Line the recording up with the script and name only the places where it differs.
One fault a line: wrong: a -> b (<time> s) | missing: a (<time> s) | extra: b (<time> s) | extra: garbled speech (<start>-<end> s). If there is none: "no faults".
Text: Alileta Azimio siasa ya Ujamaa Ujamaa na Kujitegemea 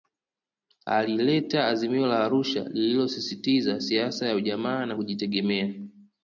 extra: la Arusha lililosisitiza (2.1 s)
missing: Ujamaa (4.9 s)